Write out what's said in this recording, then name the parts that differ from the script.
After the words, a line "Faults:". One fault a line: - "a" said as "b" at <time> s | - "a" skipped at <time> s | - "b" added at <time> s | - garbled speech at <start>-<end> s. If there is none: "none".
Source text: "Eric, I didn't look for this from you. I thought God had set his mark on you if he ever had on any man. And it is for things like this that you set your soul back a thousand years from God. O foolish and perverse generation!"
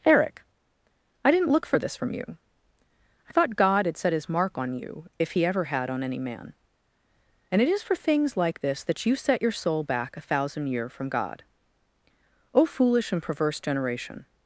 "Eric, I didn't look for this from you. I thought God had set his mark on you if he ever had on any man. And it is for things like this that you set your soul back a thousand year from God. O foolish and perverse generation!"
Faults:
- "years" said as "year" at 10.7 s